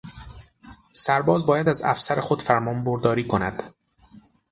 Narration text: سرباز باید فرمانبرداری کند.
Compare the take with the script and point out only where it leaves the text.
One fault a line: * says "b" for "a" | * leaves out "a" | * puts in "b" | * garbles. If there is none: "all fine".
* puts in "از افسر خود"